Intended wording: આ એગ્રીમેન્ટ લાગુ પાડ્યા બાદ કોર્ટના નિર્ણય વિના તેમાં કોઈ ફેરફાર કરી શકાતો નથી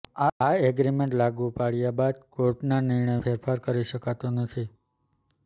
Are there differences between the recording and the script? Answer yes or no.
yes